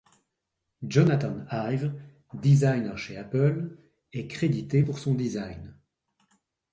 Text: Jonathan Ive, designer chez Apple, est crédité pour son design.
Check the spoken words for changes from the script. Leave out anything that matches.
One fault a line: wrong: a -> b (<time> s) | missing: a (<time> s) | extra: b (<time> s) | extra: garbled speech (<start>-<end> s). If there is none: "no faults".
no faults